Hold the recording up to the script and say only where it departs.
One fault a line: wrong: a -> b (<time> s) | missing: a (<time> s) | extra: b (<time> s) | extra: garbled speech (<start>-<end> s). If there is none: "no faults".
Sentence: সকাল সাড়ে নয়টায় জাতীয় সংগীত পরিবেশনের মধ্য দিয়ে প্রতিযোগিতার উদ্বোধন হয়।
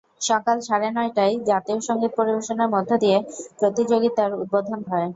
no faults